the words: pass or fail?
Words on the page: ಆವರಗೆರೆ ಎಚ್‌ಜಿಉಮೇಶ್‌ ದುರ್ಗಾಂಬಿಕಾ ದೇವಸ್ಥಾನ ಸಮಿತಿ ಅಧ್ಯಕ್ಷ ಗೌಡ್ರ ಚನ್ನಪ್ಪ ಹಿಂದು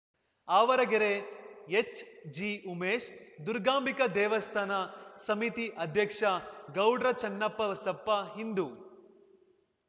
fail